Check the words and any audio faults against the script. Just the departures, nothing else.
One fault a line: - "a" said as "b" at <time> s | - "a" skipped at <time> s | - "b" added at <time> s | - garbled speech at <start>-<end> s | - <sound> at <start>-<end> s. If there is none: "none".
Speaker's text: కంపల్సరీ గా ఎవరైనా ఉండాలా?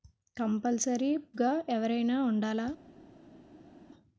none